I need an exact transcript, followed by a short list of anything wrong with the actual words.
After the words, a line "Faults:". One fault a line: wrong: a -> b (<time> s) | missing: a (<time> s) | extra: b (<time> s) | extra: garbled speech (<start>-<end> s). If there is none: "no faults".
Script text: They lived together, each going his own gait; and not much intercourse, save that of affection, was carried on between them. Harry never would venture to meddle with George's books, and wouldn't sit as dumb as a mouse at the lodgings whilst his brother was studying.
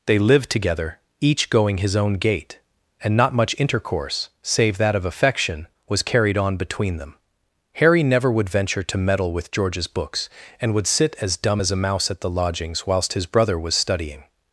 They lived together, each going his own gait; and not much intercourse, save that of affection, was carried on between them. Harry never would venture to meddle with George's books, and would sit as dumb as a mouse at the lodgings whilst his brother was studying.
Faults:
wrong: wouldn't -> would (10.7 s)